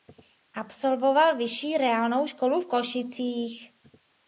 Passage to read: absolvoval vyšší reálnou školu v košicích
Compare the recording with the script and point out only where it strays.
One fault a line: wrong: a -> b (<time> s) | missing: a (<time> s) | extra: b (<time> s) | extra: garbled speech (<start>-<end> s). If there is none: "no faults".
no faults